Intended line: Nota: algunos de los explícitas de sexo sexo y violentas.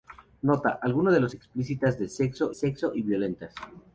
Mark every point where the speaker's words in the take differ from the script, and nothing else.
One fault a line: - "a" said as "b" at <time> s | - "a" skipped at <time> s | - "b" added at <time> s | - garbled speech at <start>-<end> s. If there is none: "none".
none